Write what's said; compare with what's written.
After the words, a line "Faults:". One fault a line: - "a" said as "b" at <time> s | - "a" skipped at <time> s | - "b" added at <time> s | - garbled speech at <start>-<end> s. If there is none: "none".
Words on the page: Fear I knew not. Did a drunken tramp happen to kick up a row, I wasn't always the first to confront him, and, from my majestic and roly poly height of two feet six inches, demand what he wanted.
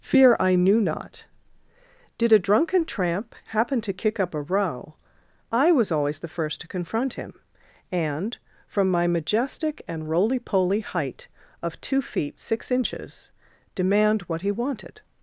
Fear I knew not. Did a drunken tramp happen to kick up a row, I was always the first to confront him, and, from my majestic and roly poly height of two feet six inches, demand what he wanted.
Faults:
- "wasn't" said as "was" at 5.7 s